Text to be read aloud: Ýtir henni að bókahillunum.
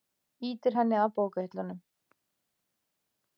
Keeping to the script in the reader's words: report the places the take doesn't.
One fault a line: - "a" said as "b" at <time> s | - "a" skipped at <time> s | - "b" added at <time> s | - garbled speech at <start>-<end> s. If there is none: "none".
none